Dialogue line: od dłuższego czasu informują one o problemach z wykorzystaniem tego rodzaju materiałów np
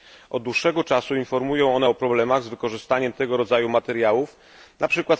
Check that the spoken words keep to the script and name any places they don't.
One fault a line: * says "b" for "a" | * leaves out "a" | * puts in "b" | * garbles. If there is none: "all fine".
all fine